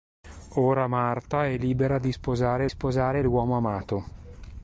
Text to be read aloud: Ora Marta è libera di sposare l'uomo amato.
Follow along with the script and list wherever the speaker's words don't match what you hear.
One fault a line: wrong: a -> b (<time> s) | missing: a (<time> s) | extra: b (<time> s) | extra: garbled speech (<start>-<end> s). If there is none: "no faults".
extra: sposare (2.7 s)